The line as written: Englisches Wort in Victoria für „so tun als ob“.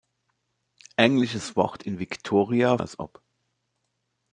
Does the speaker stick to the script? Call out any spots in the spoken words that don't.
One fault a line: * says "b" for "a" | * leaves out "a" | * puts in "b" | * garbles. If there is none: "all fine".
* leaves out "für so tun"